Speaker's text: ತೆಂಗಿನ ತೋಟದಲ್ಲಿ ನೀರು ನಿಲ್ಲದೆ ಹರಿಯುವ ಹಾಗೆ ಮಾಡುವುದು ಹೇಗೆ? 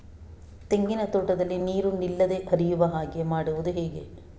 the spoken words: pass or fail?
pass